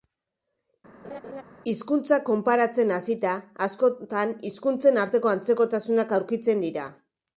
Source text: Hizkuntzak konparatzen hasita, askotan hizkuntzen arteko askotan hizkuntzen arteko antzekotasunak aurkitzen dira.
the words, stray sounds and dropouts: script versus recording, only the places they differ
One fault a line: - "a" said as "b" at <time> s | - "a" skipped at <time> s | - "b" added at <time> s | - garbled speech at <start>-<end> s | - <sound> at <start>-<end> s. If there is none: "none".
- laugh at 1.0-1.4 s
- "askotan hizkuntzen arteko" skipped at 5.4 s